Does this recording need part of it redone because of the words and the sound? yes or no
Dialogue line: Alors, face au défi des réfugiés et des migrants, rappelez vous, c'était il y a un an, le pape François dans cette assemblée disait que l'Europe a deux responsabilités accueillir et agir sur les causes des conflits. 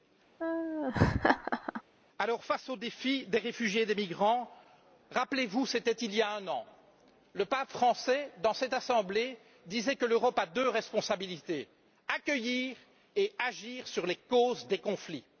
yes